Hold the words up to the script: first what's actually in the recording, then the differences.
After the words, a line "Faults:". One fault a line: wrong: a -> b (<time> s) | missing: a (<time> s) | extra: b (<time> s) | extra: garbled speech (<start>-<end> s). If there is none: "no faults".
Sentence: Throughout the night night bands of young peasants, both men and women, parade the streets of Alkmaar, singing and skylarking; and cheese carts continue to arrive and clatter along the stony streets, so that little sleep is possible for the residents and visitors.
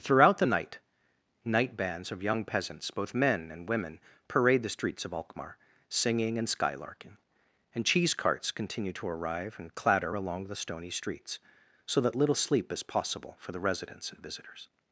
Throughout the night night bands of young peasants, both men and women, parade the streets of Alkmaar, singing and skylarking; and cheese carts continue to arrive and clatter along the stony streets, so that little sleep is possible for the residents and visitors.
Faults:
no faults